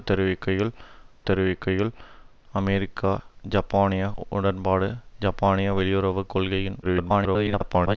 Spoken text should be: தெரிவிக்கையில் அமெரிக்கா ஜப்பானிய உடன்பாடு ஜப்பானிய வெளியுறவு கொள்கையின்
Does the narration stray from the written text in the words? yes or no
yes